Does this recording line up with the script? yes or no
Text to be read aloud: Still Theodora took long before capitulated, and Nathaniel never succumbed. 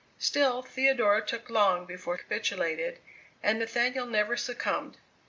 yes